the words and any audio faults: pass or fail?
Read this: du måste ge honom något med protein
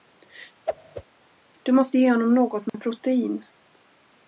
fail